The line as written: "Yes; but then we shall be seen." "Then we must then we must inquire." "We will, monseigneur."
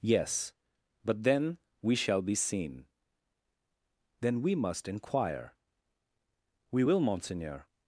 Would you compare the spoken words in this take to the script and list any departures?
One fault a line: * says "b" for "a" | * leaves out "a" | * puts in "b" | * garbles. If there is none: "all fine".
* leaves out "then we must"